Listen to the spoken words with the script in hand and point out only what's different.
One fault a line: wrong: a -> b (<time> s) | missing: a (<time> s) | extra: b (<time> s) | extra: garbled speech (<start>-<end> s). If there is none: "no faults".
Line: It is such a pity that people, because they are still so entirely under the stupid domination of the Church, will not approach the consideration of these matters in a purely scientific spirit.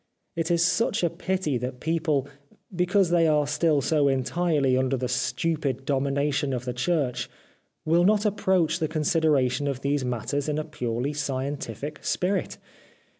no faults